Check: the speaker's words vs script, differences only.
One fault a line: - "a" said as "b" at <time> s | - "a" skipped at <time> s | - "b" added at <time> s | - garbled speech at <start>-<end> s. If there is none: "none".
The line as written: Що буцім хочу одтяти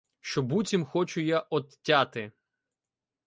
- "я" added at 1.2 s